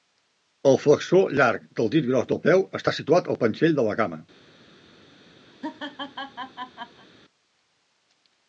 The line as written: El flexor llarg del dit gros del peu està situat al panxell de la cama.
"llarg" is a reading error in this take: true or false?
false